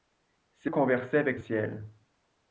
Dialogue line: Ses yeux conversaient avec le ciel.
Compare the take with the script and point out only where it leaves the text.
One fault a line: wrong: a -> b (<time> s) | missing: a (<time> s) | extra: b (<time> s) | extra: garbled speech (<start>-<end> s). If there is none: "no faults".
missing: yeux (0.7 s)
missing: le (1.4 s)